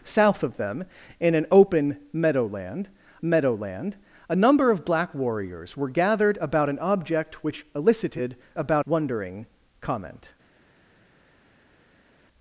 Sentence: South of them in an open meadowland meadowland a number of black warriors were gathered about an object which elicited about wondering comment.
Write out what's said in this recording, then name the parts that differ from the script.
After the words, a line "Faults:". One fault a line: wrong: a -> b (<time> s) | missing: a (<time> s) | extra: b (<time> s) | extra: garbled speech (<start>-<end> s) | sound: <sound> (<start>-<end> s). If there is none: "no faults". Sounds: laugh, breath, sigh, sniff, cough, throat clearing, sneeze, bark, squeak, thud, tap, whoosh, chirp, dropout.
South of them in an open meadowland meadowland a number of black warriors were gathered about an object which elicited about wondering comment.
Faults:
no faults